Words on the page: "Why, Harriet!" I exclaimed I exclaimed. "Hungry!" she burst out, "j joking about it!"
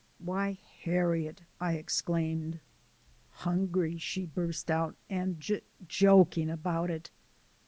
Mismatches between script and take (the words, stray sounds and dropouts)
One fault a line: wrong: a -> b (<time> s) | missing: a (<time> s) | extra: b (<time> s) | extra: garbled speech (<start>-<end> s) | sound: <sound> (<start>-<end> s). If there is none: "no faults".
missing: I exclaimed (2.6 s)
extra: and (5.1 s)